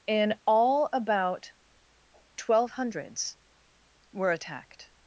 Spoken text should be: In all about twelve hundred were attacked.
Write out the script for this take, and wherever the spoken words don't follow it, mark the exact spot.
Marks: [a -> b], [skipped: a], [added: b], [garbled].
In all about twelve [hundred -> hundreds] were attacked.